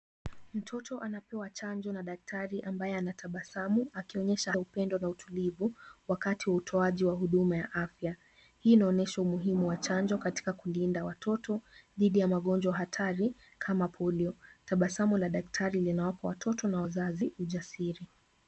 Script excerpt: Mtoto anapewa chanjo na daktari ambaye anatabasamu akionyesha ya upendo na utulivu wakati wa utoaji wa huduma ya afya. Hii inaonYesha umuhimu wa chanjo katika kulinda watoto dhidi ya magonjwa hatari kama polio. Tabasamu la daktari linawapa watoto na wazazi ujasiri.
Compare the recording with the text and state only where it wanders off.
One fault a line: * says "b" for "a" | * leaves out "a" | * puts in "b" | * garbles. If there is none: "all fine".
all fine